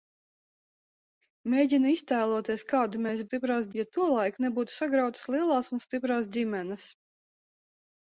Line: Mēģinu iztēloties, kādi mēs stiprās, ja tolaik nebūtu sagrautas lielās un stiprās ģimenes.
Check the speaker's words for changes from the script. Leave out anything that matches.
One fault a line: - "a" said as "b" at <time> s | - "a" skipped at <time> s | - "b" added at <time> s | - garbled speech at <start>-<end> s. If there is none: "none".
none